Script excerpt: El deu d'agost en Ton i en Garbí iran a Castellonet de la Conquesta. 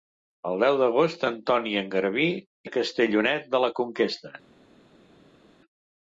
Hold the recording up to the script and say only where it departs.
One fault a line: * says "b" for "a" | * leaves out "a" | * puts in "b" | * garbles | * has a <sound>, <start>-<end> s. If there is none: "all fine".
* leaves out "iran"